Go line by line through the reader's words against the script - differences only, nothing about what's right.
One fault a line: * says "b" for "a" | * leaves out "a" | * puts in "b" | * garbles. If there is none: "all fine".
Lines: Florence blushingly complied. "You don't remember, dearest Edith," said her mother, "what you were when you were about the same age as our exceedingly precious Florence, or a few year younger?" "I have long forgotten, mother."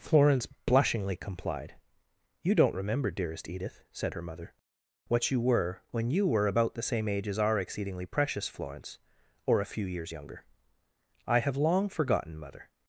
* says "years" for "year"